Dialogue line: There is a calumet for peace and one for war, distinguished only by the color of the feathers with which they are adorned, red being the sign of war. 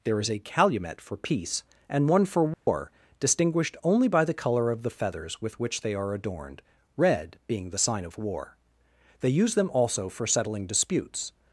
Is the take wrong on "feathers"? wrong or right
right